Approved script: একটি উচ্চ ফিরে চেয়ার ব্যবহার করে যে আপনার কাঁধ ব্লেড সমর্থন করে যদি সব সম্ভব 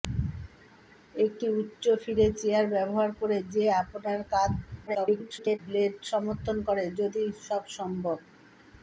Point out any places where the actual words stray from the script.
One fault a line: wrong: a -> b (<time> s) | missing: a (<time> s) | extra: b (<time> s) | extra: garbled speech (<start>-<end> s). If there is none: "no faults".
extra: garbled speech (4.9-5.6 s)